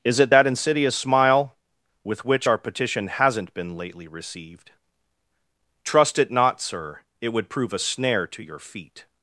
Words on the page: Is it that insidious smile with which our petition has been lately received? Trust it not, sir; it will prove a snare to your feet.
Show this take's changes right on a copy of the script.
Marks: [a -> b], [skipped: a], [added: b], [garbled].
Is it that insidious smile with which our petition [has -> hasn't] been lately received? Trust it not, sir; it [will -> would] prove a snare to your feet.